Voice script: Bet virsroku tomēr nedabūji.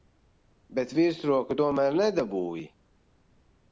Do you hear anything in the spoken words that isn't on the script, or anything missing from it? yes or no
no